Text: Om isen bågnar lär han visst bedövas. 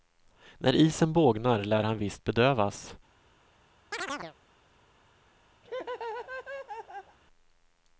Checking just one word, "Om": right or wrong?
wrong